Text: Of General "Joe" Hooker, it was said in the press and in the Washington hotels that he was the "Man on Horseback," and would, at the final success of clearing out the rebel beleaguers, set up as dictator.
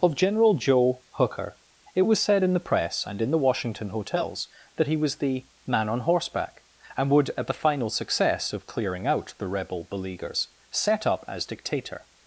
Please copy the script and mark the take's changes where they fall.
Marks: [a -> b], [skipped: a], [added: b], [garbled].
Of General "Joe" Hooker, it was said in the press and in the Washington hotels that he was the "Man on Horseback," and would, at the final success of clearing out the rebel beleaguers, set up as dictator.